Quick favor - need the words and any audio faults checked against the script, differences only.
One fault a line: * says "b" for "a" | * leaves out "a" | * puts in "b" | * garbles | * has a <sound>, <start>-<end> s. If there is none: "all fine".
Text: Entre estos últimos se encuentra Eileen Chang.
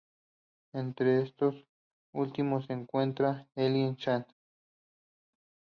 all fine